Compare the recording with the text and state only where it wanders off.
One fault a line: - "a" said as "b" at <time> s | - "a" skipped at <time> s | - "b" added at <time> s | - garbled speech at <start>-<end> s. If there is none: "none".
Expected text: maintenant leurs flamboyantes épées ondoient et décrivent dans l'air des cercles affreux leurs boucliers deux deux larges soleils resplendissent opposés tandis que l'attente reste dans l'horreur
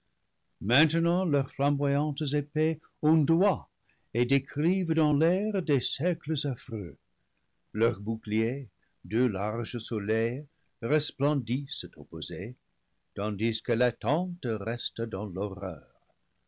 - "deux" skipped at 9.3 s